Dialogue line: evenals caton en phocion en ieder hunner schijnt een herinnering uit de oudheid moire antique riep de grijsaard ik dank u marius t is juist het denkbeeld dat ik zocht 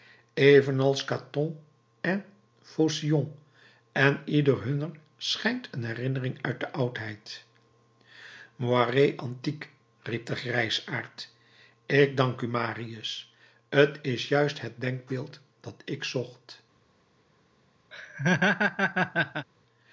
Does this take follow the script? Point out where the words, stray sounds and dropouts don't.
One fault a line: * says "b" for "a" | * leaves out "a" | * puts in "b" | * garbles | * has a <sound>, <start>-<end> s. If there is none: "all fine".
* has a laugh, 17.9-19.5 s